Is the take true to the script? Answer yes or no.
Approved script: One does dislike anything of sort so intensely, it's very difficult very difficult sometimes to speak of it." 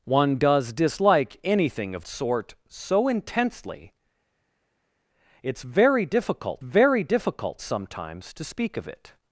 yes